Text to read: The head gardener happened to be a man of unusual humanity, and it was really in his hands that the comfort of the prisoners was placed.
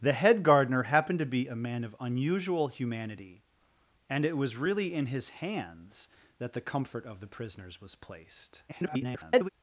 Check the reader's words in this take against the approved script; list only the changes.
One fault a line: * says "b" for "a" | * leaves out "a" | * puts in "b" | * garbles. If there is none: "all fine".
* garbles